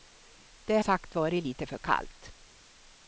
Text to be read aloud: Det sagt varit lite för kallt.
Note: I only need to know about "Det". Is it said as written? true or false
true